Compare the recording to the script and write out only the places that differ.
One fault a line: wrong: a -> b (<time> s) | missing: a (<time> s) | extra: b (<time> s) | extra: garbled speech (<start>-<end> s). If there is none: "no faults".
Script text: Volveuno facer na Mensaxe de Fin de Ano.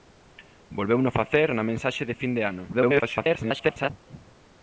extra: garbled speech (2.7-3.9 s)